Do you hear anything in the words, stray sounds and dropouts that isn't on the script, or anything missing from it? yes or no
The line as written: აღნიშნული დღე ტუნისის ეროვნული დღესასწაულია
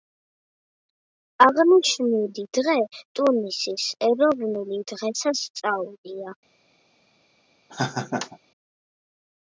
yes